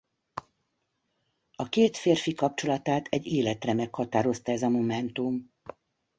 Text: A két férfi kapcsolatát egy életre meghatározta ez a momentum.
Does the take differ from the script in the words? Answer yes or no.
no